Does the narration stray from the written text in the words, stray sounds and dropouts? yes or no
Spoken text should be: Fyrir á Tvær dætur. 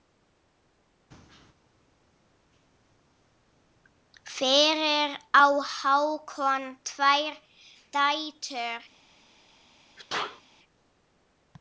yes